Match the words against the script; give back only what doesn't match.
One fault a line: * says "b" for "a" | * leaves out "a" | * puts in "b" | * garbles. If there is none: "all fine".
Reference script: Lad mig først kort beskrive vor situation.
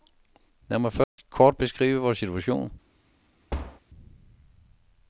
all fine